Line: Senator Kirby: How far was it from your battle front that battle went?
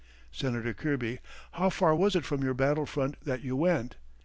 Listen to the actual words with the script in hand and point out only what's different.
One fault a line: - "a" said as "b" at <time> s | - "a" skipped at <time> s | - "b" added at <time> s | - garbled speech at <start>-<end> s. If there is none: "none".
- "battle" said as "you" at 3.4 s